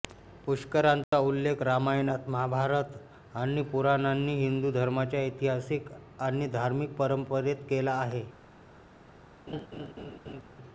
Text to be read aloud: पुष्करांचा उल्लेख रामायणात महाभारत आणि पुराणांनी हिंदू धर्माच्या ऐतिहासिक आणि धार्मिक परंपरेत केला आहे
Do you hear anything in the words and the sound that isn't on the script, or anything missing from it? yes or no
yes